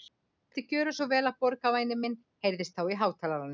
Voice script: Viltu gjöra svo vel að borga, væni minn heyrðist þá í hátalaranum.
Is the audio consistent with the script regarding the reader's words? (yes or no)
yes